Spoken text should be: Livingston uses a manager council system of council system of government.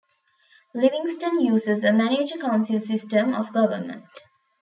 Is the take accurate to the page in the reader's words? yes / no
no